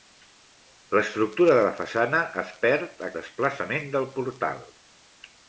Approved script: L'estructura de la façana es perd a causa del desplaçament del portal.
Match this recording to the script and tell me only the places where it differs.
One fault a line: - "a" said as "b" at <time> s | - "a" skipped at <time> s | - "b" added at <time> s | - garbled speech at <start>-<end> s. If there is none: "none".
- "causa del" skipped at 3.1 s